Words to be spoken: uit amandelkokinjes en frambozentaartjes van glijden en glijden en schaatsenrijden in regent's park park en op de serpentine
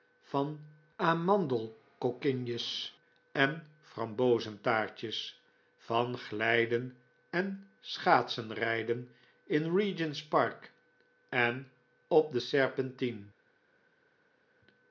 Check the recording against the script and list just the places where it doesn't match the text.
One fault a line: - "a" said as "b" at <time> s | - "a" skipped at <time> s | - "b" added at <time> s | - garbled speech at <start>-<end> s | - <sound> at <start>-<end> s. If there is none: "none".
- "uit" said as "van" at 0.2 s
- "glijden en" skipped at 7.7 s
- "park" skipped at 10.7 s